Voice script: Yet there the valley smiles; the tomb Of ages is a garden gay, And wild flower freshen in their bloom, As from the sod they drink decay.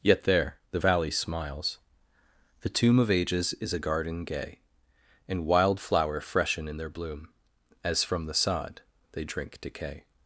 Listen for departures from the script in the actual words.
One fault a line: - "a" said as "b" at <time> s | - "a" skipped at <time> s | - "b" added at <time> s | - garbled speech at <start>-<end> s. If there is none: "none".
none